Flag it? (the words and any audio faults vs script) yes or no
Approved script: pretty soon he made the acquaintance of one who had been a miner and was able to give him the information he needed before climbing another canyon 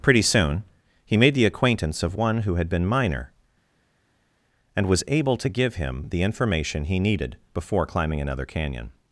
yes